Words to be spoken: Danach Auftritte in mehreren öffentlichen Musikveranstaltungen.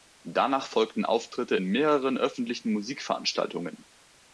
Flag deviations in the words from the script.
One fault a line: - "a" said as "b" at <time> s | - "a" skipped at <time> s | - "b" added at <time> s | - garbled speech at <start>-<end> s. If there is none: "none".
- "folgten" added at 0.7 s